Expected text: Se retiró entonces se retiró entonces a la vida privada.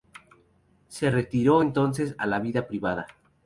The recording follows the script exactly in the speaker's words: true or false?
false